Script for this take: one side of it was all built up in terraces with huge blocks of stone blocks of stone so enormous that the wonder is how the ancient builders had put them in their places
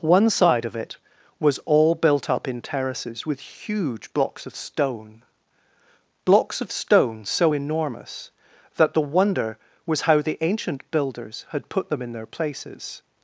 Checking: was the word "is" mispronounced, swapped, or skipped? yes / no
yes